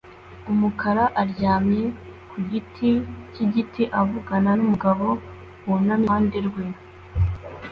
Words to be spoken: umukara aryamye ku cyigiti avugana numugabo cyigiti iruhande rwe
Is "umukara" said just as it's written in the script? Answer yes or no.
yes